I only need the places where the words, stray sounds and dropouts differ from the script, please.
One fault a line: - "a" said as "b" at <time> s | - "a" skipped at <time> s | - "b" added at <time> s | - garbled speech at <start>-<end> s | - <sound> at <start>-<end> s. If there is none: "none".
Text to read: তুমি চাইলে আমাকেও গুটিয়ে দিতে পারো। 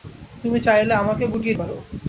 - "দিতে" skipped at 1.6 s